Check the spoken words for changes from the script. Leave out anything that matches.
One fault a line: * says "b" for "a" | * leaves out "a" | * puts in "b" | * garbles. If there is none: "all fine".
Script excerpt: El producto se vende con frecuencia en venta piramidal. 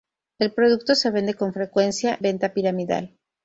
* leaves out "en"